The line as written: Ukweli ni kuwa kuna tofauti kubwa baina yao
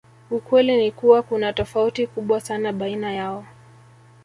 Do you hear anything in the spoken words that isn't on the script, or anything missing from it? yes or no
yes